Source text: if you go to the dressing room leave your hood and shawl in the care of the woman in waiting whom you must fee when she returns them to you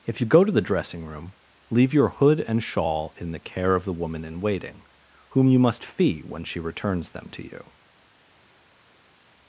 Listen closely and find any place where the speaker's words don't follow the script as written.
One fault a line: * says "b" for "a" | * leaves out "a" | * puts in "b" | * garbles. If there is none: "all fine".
all fine